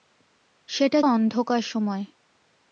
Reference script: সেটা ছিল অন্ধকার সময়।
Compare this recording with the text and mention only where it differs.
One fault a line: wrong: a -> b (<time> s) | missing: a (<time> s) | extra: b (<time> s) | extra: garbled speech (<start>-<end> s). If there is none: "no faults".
missing: ছিল (1.0 s)